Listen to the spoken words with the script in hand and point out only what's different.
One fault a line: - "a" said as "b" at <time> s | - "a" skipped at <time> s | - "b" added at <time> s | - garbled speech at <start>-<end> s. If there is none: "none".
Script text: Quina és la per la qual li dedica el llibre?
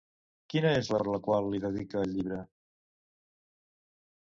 none